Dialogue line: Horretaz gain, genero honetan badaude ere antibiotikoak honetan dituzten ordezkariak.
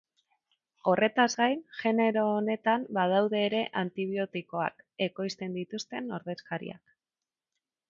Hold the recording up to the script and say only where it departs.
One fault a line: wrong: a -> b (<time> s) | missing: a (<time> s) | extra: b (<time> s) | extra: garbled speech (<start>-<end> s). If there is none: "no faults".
wrong: honetan -> ekoizten (5.1 s)